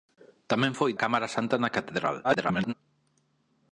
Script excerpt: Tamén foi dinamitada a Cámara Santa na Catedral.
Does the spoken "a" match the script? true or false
false